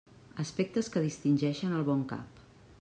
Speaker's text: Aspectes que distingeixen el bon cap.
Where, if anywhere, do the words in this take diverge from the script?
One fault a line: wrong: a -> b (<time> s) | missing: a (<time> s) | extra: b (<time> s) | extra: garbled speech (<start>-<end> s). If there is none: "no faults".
no faults